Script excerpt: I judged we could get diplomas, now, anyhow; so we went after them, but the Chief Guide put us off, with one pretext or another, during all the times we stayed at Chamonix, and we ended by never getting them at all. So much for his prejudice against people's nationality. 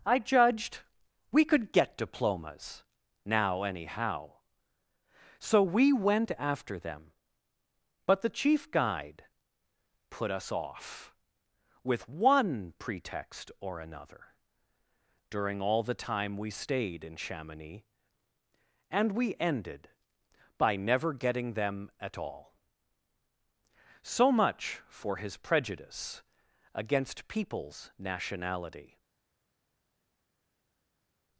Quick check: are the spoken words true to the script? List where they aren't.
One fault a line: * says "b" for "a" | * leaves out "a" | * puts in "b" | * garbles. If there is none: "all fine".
* says "time" for "times"
* says "in" for "at"